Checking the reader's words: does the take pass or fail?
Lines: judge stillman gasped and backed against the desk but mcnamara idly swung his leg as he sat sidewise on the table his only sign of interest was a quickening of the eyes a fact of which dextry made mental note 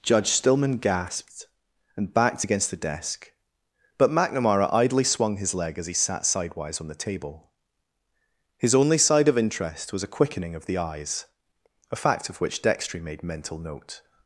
fail